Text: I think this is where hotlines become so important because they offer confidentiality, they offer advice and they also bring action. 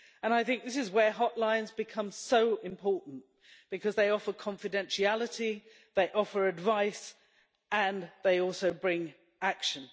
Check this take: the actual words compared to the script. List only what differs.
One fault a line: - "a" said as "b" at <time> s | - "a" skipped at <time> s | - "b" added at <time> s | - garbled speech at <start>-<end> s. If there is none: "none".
none